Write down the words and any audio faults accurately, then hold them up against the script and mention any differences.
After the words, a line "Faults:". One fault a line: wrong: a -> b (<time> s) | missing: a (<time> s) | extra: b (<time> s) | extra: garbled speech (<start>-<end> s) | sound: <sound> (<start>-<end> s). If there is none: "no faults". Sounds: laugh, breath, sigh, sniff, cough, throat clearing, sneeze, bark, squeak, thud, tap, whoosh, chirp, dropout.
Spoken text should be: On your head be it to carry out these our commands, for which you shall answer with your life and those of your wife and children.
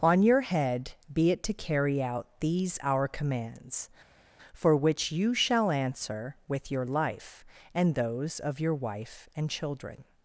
On your head be it to carry out these our commands, for which you shall answer with your life and those of your wife and children.
Faults:
no faults